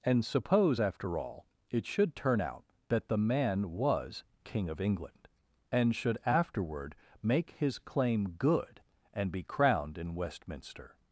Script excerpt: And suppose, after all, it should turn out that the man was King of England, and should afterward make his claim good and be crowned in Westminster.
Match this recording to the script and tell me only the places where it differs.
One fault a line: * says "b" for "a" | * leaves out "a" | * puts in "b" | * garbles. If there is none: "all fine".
all fine